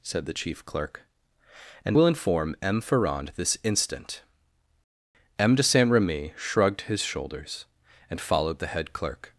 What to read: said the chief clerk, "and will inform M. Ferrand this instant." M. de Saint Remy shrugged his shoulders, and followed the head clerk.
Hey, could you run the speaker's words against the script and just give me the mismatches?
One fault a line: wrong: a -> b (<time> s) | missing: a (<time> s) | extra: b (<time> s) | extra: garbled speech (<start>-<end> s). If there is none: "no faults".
no faults